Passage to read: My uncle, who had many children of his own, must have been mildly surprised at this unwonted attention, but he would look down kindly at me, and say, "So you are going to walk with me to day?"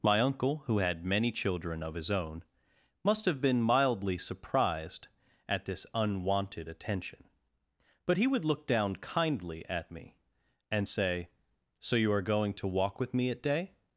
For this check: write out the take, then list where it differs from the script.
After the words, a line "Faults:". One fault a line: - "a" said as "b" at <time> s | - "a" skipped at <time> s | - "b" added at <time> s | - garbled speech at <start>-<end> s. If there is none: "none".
My uncle, who had many children of his own, must have been mildly surprised at this unwonted attention, but he would look down kindly at me, and say, "So you are going to walk with me at day?"
Faults:
- "to" said as "at" at 13.3 s